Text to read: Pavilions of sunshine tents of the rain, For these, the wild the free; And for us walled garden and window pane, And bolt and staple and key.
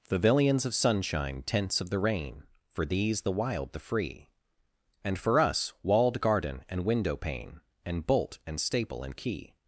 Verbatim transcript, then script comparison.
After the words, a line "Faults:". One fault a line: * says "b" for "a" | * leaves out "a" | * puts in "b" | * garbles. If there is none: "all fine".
Pavilions of sunshine tents of the rain, For these, the wild the free; And for us walled garden and window pane, And bolt and staple and key.
Faults:
all fine